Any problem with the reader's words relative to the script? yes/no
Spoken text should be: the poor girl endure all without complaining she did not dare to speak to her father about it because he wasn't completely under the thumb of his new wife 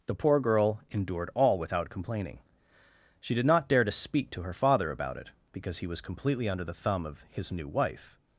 yes